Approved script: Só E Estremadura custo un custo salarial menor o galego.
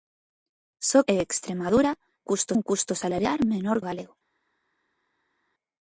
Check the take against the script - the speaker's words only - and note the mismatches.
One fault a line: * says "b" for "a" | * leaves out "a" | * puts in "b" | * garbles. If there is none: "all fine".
all fine